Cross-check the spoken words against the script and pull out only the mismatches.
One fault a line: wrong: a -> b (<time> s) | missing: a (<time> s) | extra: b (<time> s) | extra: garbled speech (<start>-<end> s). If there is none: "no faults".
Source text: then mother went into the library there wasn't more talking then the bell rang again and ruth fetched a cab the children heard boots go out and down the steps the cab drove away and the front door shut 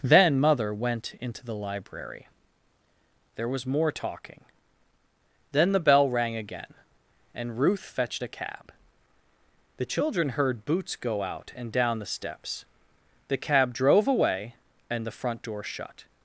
wrong: wasn't -> was (3.5 s)